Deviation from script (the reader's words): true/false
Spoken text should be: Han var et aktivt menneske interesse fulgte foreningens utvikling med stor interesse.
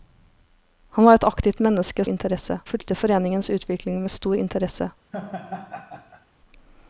false